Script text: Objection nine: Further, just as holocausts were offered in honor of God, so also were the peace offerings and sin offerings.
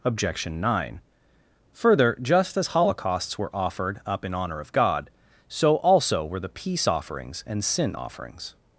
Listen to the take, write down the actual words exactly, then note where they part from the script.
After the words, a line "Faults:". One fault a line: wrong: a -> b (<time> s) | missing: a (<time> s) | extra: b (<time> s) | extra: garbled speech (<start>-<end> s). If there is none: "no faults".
Objection nine: Further, just as holocausts were offered up in honor of God, so also were the peace offerings and sin offerings.
Faults:
extra: up (4.1 s)